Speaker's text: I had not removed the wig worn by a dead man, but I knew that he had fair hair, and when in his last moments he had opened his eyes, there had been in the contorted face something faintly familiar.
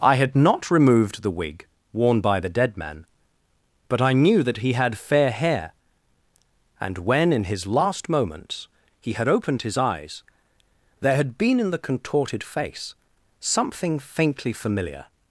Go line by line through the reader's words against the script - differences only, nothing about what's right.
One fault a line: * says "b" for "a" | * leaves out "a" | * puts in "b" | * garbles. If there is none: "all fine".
* says "the" for "a"